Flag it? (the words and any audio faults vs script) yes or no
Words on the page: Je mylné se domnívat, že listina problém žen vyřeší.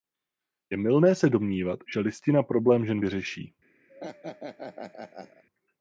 yes